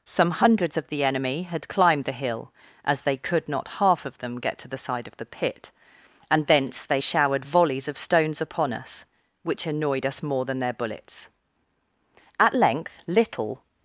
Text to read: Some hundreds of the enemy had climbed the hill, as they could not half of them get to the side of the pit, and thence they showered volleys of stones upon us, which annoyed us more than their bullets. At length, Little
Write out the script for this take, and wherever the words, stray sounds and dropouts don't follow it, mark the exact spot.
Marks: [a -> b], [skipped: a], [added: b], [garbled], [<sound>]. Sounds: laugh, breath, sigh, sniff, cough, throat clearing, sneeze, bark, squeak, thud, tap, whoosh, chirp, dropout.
Some hundreds of the enemy had climbed the hill, as they could not half of them get to the side of the pit, and thence they showered volleys of stones upon us, which annoyed us more than their bullets. At length, Little